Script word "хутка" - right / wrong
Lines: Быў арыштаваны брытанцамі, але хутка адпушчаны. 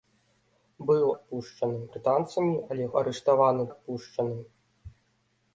wrong